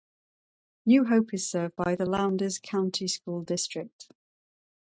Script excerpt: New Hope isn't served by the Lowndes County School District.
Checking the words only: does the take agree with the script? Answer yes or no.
no